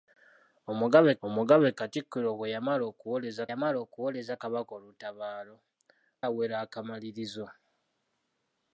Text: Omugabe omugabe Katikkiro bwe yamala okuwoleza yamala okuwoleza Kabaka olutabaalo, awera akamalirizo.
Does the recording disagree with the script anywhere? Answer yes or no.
no